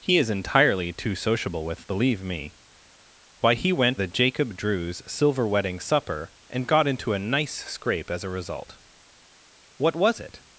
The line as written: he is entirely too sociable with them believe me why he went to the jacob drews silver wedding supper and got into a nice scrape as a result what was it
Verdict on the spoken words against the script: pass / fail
fail